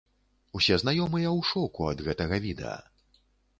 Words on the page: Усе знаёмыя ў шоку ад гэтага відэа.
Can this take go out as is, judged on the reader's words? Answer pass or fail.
pass